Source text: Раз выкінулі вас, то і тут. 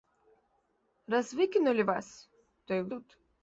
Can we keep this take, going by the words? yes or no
yes